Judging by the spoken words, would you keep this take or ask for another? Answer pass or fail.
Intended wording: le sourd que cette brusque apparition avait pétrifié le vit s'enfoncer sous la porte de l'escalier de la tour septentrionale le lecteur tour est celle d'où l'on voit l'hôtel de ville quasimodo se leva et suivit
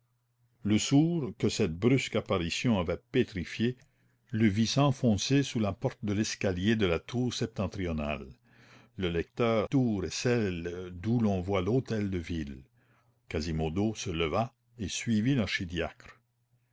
pass